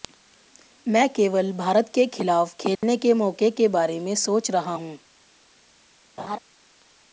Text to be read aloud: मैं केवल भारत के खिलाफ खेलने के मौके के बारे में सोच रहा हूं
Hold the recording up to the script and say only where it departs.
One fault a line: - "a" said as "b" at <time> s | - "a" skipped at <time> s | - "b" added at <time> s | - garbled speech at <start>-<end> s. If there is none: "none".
none